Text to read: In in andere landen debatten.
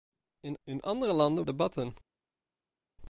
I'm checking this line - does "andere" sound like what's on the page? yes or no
yes